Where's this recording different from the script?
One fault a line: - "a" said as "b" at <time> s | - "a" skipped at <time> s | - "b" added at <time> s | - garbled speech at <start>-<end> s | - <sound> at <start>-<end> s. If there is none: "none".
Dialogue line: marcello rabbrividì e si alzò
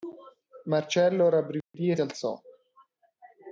- dropout at 1.6-1.7 s
- "si" skipped at 2.0 s